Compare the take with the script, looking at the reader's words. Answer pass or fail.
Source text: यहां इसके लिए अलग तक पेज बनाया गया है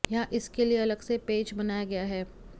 fail